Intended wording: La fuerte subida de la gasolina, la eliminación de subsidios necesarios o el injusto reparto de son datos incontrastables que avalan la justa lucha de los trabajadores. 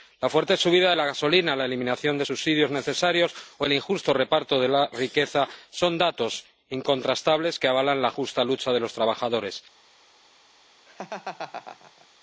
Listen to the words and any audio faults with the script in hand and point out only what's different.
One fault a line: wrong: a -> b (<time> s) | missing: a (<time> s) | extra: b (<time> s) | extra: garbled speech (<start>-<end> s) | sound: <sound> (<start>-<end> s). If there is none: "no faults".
extra: la riqueza (4.7 s)
sound: laugh (10.9-12.1 s)